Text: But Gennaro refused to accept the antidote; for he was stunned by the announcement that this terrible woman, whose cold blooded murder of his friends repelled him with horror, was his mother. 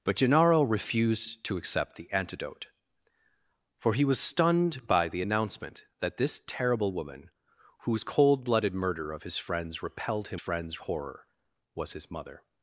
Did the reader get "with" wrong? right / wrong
wrong